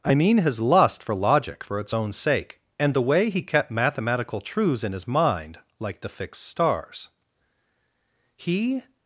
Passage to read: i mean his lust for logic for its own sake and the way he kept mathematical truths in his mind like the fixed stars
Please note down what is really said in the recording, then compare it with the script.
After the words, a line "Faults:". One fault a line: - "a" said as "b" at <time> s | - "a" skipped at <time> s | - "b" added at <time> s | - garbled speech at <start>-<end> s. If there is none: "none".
i mean his lust for logic for its own sake and the way he kept mathematical truths in his mind like the fixed stars he
Faults:
- "he" added at 8.3 s